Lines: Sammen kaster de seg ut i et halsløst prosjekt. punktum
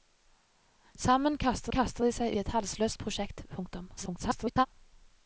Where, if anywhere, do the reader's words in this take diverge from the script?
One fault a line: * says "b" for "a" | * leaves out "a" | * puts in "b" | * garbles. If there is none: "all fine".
* puts in "kaster"
* leaves out "ut"
* garbles